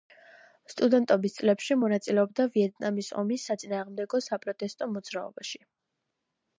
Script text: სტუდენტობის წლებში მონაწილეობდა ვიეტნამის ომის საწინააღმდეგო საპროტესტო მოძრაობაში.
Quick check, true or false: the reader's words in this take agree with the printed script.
true